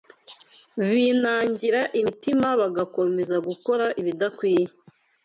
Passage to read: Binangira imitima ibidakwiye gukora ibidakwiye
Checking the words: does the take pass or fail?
fail